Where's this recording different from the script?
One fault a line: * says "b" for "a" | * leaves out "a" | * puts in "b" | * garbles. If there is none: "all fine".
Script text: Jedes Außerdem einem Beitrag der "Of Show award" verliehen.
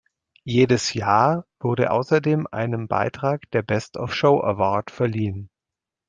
* puts in "Jahr wurde"
* puts in "Best"